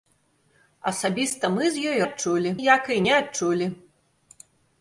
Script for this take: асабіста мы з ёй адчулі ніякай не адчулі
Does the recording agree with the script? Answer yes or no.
yes